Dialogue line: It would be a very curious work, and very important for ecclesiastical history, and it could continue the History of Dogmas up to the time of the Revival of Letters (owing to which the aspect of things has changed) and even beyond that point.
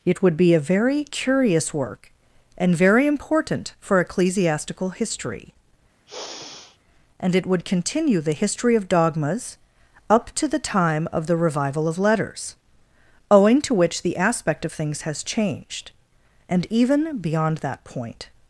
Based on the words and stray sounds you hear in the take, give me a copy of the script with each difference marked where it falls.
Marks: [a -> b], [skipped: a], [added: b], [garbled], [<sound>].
It would be a very curious work, and very important for ecclesiastical history, [sigh] and it [could -> would] continue the History of Dogmas up to the time of the Revival of Letters (owing to which the aspect of things has changed) and even beyond that point.